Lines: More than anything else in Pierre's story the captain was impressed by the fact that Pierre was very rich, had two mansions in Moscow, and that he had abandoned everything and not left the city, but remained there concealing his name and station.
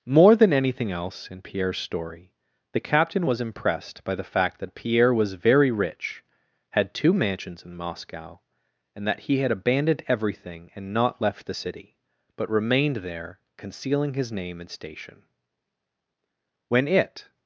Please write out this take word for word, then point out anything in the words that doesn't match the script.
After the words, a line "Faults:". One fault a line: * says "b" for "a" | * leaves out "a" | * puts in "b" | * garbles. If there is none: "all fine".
More than anything else in Pierre's story the captain was impressed by the fact that Pierre was very rich, had two mansions in Moscow, and that he had abandoned everything and not left the city, but remained there concealing his name and station. When it
Faults:
* puts in "When it"